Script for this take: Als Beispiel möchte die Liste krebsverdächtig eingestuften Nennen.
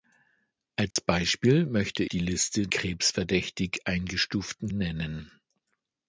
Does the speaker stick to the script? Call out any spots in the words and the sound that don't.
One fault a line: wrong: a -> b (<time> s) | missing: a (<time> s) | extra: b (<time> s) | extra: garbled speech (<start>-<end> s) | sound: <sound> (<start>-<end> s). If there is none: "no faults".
sound: dropout (0.9-1.0 s)